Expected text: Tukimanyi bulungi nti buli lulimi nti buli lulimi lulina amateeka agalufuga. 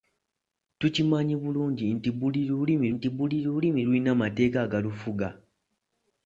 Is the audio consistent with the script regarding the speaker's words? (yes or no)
yes